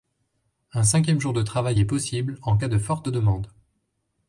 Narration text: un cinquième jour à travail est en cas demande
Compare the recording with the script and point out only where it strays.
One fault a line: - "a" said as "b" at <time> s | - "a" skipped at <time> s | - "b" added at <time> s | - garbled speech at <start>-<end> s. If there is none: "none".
- "à" said as "de" at 1.3 s
- "possible" added at 1.8 s
- "de forte" added at 2.7 s